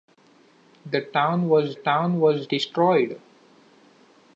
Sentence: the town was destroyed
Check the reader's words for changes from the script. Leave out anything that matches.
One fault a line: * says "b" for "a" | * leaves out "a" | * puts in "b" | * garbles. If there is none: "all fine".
* puts in "town was"